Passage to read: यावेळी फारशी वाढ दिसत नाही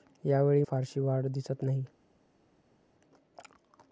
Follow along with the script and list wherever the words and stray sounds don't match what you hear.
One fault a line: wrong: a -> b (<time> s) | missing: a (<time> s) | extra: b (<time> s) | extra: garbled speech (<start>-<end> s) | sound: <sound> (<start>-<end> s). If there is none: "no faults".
no faults